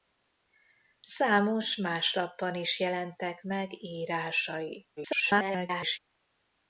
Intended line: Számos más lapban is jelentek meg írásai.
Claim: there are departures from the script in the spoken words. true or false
true